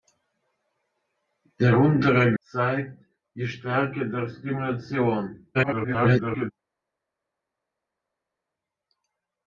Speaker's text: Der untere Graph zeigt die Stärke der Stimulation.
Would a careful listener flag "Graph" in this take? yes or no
yes